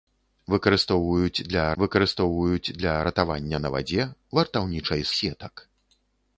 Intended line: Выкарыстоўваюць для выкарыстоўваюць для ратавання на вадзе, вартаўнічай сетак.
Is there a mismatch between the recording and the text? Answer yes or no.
no